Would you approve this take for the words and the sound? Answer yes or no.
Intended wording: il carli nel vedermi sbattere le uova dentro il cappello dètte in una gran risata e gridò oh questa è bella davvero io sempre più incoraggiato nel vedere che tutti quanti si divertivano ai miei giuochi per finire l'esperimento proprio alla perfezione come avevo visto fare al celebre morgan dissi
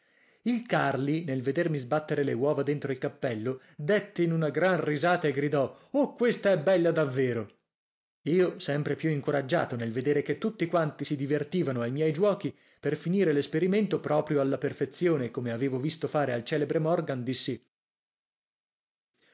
yes